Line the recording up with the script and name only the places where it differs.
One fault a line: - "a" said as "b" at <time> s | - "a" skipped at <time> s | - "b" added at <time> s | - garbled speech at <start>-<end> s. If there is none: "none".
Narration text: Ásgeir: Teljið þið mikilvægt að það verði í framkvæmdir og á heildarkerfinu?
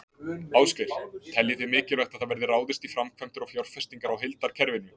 - "ráðist" added at 2.5 s
- "fjárfestingar" added at 3.5 s